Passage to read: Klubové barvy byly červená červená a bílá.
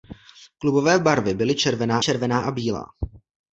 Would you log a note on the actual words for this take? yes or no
no